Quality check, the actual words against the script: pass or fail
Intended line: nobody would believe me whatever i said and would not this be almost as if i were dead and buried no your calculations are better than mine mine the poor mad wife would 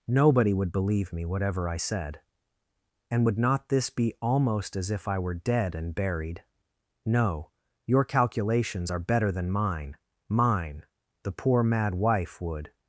pass